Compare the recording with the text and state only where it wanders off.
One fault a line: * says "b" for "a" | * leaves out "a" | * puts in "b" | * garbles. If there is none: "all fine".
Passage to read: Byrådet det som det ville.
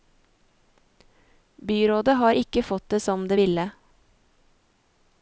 * puts in "har ikke fått"